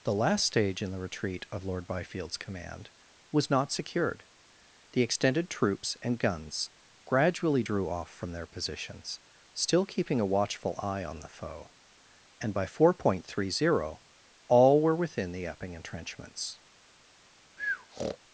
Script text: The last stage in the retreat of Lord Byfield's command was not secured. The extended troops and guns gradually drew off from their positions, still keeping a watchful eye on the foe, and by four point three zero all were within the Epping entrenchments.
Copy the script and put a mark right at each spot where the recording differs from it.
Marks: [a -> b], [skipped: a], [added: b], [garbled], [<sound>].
The last stage in the retreat of Lord Byfield's command was not secured. The extended troops and guns gradually drew off from their positions, still keeping a watchful eye on the foe, and by four point three zero all were within the Epping entrenchments. [breath]